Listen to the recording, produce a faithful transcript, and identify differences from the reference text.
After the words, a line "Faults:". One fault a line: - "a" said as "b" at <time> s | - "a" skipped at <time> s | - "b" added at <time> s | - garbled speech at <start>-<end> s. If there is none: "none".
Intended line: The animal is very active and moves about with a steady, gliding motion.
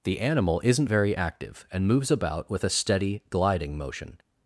The animal isn't very active and moves about with a steady, gliding motion.
Faults:
- "is" said as "isn't" at 0.6 s